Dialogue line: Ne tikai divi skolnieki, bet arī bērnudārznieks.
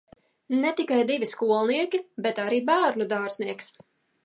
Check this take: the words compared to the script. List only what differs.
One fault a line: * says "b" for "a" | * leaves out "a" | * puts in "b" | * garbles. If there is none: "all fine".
all fine